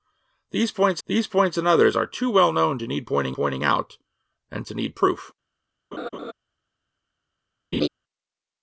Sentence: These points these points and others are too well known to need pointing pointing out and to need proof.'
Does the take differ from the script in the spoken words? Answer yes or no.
no